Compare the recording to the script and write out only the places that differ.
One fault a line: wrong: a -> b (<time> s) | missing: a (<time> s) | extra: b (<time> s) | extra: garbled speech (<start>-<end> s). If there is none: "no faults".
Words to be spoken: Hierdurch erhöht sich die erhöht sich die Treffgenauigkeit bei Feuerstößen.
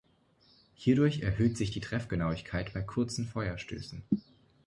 missing: erhöht sich die (1.8 s)
extra: kurzen (2.8 s)